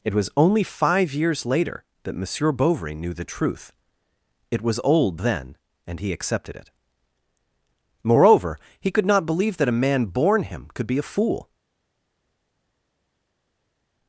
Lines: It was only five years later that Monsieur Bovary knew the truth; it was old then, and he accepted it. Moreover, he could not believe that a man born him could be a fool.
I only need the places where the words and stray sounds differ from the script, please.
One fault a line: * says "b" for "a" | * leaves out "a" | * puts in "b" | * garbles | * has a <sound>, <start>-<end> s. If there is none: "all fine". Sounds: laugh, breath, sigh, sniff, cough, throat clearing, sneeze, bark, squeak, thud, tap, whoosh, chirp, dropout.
all fine